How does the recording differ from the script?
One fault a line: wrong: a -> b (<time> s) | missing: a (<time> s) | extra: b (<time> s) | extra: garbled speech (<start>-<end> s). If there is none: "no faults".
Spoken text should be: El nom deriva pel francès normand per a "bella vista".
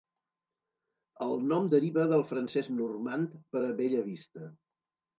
wrong: pel -> del (2.1 s)